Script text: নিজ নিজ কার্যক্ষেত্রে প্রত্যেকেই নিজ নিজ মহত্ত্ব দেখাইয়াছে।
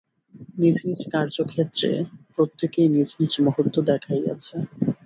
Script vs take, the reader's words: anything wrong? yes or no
no